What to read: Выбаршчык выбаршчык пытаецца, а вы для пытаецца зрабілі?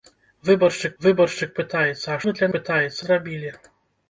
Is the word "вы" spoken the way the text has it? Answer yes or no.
yes